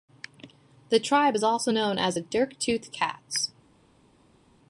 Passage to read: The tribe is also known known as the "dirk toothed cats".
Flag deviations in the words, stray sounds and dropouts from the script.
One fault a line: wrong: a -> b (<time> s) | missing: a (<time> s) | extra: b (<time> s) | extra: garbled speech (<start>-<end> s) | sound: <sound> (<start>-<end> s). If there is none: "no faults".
missing: known (2.0 s)